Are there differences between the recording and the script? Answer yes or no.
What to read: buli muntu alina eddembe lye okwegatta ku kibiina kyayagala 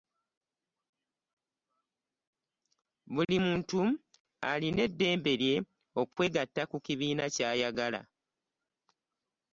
no